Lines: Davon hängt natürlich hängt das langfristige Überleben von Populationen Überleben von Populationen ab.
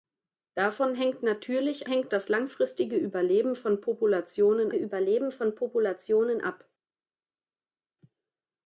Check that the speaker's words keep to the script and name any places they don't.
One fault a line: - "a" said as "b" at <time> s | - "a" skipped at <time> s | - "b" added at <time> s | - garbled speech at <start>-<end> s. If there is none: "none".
none